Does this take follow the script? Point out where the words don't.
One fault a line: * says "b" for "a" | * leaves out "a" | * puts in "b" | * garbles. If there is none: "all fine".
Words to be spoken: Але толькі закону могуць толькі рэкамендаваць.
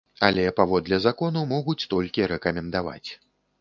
* says "паводле" for "толькі"